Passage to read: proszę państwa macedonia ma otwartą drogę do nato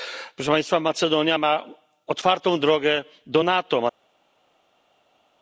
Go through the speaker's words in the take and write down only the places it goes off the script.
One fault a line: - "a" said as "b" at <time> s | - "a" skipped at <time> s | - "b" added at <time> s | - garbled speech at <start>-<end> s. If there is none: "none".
none